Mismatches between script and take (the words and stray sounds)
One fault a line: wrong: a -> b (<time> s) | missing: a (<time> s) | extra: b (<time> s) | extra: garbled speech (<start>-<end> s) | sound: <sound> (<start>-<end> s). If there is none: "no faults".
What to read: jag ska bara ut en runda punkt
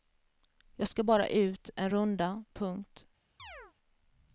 sound: chirp (3.4-3.7 s)